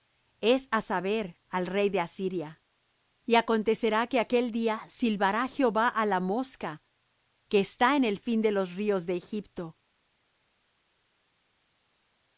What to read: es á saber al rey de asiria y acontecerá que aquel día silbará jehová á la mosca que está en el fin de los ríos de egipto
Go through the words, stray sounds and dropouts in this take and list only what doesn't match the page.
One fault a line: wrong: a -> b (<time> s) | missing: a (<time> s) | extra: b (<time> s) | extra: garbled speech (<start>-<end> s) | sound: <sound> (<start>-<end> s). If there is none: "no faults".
no faults